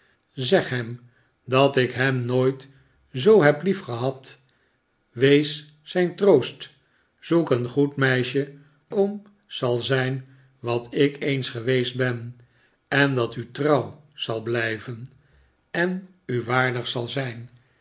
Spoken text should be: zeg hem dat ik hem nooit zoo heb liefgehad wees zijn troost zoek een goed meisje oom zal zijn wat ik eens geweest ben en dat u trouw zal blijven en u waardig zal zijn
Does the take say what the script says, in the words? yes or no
yes